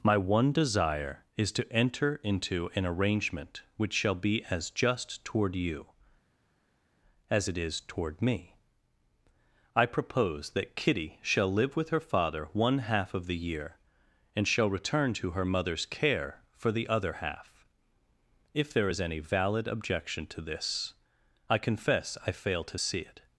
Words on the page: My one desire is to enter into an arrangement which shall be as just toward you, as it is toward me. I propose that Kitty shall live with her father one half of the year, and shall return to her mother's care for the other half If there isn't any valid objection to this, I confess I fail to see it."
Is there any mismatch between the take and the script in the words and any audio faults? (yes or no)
yes